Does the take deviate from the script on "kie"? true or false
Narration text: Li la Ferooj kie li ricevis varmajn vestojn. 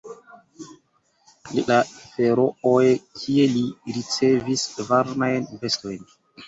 false